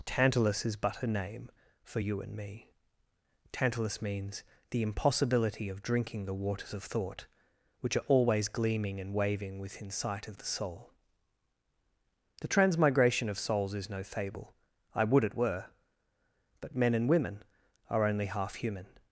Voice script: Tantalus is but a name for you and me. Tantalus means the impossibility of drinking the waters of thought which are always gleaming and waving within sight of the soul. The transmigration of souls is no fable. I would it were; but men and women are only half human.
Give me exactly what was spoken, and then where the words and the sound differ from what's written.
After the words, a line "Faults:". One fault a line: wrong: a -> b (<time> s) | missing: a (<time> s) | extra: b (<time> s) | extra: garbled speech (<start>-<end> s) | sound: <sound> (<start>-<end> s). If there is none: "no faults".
Tantalus is but a name for you and me. Tantalus means the impossibility of drinking the waters of thought which are always gleaming and waving within sight of the soul. The transmigration of souls is no fable. I would it were; but men and women are only half human.
Faults:
no faults